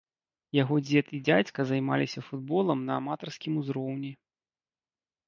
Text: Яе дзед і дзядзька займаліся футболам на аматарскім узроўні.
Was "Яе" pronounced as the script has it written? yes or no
no